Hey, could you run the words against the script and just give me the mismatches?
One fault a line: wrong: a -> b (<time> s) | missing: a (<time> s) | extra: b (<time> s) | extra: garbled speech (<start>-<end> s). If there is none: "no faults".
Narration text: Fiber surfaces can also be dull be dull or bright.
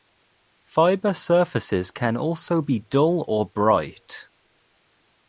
missing: be dull (3.3 s)